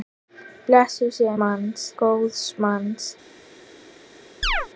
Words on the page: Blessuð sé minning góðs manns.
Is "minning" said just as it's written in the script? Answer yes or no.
no